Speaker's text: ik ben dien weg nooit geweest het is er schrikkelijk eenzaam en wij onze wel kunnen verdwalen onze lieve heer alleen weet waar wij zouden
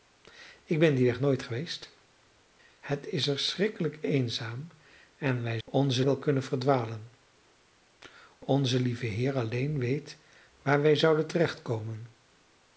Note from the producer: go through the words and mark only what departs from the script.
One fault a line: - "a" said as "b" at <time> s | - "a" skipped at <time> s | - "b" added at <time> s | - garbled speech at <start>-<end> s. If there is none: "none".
none